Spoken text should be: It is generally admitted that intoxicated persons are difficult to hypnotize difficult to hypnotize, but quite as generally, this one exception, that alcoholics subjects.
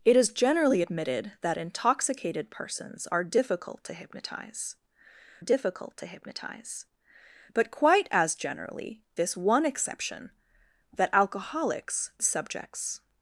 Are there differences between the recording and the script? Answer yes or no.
no